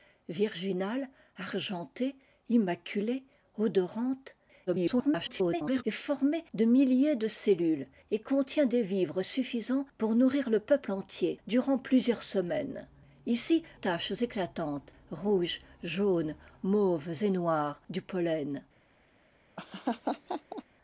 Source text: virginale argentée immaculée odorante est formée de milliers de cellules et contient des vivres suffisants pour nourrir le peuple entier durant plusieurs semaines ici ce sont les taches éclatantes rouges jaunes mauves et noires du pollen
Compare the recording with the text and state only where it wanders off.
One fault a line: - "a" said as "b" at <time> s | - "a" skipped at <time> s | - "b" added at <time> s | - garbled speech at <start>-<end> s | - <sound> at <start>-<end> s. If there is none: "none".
- garbled speech at 4.7-5.8 s
- "ce sont les" skipped at 13.6 s
- laugh at 19.6-20.6 s